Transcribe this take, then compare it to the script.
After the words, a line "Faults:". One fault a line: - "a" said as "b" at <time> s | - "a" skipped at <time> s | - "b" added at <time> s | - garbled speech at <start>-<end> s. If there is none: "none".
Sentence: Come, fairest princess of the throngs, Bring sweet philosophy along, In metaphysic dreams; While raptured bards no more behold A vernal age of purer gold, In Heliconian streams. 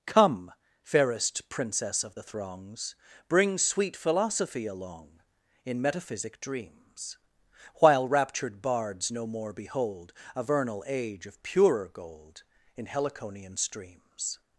Come, fairest princess of the throngs, Bring sweet philosophy along, In metaphysic dreams; While raptured bards no more behold A vernal age of purer gold, In Heliconian streams.
Faults:
none